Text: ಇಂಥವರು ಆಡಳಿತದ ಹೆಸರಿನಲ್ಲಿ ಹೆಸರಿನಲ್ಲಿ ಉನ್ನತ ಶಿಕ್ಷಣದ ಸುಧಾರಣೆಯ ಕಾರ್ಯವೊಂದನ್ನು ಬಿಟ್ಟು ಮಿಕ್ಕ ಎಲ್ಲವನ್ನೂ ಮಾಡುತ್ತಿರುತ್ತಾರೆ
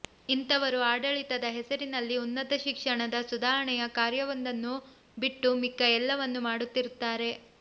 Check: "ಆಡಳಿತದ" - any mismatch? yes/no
no